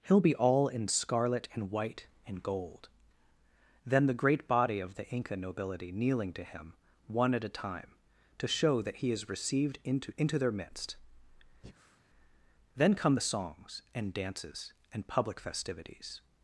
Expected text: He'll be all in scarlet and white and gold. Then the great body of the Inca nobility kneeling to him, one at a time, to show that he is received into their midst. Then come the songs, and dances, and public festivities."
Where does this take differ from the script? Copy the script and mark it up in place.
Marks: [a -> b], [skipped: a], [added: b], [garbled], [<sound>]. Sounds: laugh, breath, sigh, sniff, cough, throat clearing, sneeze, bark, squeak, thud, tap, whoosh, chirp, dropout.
He'll be all in scarlet and white and gold. Then the great body of the Inca nobility kneeling to him, one at a time, to show that he is received into [added: into] their midst. [breath] Then come the songs, and dances, and public festivities."